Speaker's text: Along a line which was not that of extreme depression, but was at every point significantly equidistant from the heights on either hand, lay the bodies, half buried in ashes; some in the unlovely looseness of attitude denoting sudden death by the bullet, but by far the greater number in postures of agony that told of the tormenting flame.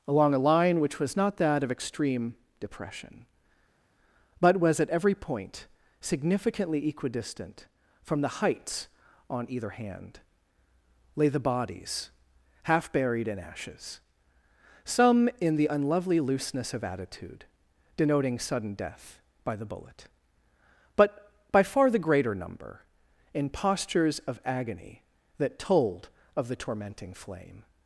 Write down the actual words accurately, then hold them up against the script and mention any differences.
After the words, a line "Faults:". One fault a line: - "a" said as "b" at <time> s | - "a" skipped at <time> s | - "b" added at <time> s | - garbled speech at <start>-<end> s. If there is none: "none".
Along a line which was not that of extreme depression, but was at every point significantly equidistant from the heights on either hand, lay the bodies, half buried in ashes; some in the unlovely looseness of attitude denoting sudden death by the bullet, but by far the greater number in postures of agony that told of the tormenting flame.
Faults:
none